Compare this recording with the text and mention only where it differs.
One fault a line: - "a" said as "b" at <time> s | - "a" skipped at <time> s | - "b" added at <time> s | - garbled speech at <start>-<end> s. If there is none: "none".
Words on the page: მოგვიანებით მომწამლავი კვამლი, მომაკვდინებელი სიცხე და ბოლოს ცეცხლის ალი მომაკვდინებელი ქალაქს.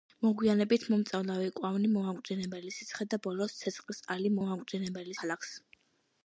none